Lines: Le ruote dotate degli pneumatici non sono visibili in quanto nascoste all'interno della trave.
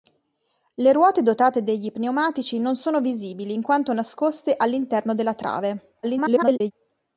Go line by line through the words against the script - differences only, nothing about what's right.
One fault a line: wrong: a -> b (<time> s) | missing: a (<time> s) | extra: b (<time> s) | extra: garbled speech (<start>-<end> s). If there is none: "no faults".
extra: garbled speech (6.0-6.7 s)